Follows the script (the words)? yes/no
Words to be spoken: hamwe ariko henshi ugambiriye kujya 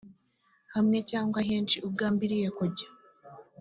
no